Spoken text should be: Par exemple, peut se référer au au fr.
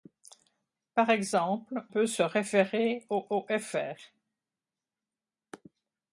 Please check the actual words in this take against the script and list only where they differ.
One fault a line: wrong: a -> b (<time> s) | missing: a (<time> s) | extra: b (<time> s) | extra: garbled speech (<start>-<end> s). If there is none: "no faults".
no faults